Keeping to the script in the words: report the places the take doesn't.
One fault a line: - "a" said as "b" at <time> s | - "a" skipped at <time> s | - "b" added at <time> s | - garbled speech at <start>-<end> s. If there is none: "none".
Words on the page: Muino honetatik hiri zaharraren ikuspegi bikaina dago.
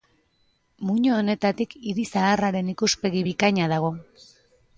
none